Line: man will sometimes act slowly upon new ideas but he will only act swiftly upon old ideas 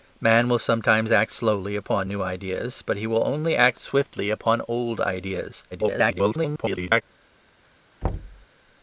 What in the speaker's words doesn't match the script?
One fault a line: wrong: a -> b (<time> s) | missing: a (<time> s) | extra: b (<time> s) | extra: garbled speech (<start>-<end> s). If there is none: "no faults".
extra: garbled speech (5.7-7.0 s)